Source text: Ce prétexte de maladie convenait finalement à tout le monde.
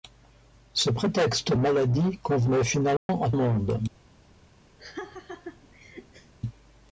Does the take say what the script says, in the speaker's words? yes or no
no